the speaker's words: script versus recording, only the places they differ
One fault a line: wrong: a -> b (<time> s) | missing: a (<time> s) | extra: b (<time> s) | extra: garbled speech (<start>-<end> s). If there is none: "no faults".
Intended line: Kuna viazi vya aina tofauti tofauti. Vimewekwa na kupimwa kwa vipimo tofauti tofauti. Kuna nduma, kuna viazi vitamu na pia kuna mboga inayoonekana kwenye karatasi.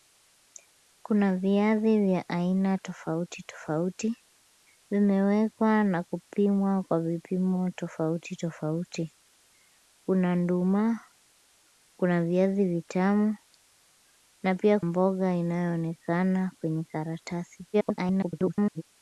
missing: kuna (14.8 s)
extra: garbled speech (17.7-18.8 s)